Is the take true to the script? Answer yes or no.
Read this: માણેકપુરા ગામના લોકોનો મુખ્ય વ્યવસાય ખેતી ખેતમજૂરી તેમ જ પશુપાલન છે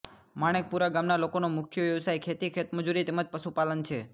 yes